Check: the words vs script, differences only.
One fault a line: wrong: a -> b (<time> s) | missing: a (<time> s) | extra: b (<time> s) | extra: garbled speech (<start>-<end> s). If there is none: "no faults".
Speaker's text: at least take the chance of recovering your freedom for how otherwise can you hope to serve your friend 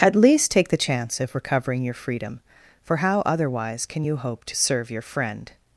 no faults